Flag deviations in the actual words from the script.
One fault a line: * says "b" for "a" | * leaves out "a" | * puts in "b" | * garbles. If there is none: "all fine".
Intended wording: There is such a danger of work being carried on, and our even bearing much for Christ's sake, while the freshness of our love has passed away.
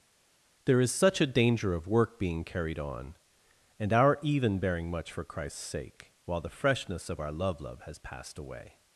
* puts in "love"